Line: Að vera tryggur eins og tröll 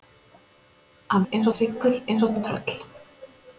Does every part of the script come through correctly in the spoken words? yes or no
no